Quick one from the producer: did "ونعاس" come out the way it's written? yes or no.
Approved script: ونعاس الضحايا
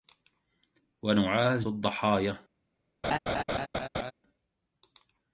yes